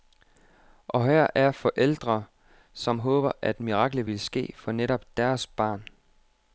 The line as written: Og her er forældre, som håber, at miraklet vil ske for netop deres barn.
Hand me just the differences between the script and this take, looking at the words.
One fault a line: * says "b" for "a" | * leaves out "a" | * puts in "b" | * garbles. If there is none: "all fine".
all fine